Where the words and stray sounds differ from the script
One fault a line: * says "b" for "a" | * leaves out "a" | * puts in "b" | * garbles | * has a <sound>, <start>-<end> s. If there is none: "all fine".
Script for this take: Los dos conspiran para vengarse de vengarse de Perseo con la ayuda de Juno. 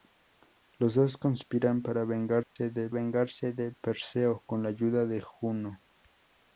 * has a dropout, 2.4-2.6 s